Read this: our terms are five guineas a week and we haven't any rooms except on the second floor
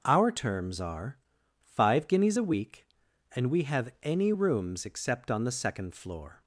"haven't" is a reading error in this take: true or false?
true